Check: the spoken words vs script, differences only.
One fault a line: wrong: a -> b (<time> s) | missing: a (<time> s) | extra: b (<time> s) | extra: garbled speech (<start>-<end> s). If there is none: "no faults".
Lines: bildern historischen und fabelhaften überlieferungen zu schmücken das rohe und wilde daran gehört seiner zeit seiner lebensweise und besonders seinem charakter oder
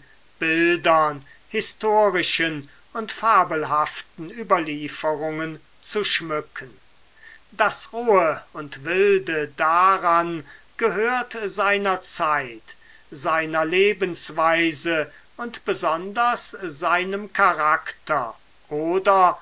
no faults